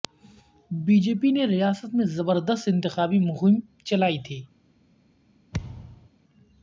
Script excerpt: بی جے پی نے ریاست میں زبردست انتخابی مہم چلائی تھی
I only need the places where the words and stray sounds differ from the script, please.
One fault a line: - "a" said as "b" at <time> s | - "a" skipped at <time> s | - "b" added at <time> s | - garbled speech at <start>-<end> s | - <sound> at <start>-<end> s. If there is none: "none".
- thud at 5.5-6.1 s